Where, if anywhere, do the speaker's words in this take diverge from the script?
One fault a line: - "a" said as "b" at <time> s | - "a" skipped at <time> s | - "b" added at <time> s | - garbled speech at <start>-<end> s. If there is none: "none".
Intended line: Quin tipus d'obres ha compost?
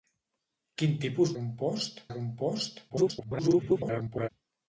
- "d'obres" said as "compost" at 1.4 s
- garbled speech at 2.9-4.3 s